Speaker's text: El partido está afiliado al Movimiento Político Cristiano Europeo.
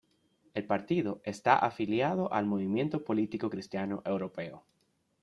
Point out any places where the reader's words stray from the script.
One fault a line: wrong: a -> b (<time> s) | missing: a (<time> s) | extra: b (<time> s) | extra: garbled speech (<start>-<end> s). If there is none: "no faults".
no faults